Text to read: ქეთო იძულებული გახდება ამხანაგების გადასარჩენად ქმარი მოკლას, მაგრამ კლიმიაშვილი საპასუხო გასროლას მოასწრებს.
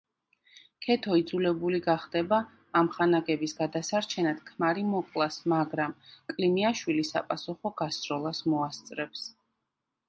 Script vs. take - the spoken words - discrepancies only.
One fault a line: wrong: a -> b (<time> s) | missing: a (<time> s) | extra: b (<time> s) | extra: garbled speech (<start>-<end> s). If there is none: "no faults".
no faults